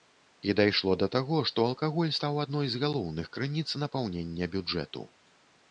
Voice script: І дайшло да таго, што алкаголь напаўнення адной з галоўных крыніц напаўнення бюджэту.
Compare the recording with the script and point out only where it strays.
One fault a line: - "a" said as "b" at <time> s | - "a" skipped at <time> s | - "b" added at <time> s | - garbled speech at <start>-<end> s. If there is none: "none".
- "напаўнення" said as "стаў" at 2.2 s